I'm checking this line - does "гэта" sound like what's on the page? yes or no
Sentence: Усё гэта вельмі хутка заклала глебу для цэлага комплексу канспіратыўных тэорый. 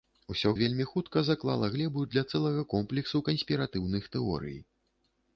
no